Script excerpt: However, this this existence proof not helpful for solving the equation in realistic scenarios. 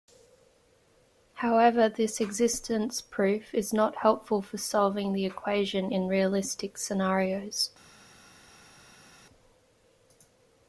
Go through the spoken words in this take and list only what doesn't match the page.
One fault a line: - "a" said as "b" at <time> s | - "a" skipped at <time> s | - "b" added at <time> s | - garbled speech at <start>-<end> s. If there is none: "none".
- "this" skipped at 2.2 s
- "is" added at 3.5 s